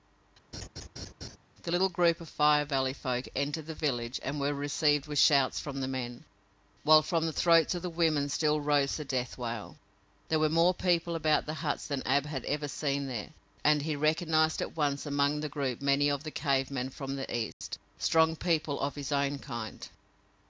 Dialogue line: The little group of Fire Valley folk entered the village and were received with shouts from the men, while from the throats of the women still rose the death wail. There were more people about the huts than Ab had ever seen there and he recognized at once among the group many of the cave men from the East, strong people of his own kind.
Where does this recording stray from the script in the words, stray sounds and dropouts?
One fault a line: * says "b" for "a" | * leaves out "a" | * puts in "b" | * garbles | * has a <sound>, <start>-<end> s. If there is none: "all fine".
* has a laugh, 0.5-1.4 s
* has a dropout, 17.5-17.6 s